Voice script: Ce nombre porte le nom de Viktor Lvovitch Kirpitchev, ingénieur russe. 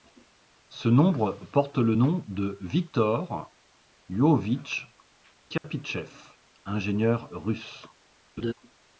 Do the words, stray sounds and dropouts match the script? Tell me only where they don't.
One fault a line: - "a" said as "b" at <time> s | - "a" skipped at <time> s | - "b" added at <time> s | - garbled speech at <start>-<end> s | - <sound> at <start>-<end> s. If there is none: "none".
- dropout at 5.6-5.6 s
- laugh at 8.4-8.5 s